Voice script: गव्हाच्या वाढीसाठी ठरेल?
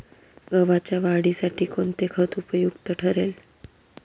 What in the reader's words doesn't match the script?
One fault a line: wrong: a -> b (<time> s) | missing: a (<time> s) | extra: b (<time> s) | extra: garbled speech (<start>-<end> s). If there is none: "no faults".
extra: कोणते खत उपयुक्त (1.6 s)